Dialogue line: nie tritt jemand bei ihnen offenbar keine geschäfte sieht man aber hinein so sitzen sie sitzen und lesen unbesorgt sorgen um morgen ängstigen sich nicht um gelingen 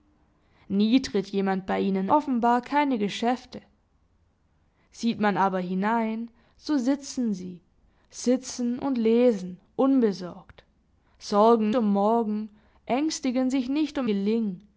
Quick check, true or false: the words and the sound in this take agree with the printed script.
true